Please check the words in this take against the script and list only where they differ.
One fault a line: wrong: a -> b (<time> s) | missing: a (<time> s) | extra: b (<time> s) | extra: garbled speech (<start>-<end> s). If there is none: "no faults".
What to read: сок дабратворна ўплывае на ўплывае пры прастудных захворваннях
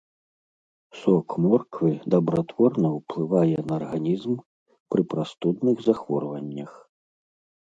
extra: морквы (1.5 s)
wrong: ўплывае -> арганізм (3.8 s)